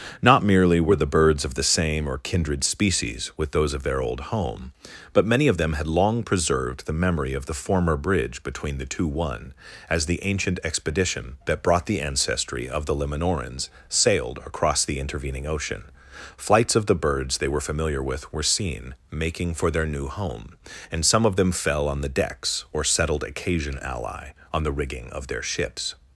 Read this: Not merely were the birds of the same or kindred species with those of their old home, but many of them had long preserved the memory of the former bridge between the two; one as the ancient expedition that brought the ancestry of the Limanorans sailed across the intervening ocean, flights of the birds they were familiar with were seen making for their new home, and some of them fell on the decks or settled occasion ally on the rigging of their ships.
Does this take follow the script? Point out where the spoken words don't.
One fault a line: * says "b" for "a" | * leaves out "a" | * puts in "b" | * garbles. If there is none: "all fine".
all fine